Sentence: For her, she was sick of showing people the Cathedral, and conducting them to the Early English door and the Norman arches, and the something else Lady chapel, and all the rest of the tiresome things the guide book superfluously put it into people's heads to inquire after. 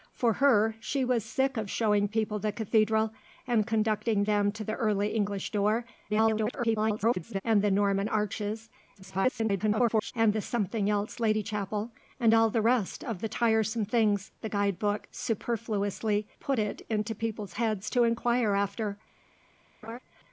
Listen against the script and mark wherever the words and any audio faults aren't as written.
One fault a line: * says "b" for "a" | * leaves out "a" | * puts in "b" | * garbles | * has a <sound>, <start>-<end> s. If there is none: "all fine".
* garbles
* garbles
* has a laugh, 19.8-20.0 s